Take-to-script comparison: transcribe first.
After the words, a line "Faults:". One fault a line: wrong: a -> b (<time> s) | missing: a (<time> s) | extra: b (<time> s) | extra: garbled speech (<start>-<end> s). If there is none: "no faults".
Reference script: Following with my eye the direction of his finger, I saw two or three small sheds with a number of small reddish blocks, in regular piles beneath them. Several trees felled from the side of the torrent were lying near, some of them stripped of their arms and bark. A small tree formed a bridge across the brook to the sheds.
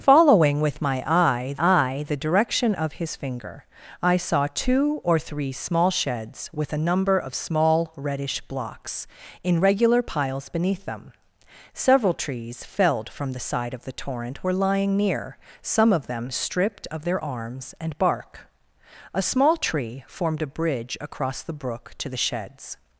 Following with my eye eye the direction of his finger, I saw two or three small sheds with a number of small reddish blocks, in regular piles beneath them. Several trees felled from the side of the torrent were lying near, some of them stripped of their arms and bark. A small tree formed a bridge across the brook to the sheds.
Faults:
extra: eye (1.6 s)